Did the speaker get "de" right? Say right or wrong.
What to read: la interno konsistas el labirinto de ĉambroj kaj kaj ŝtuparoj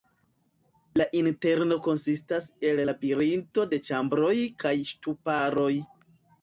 right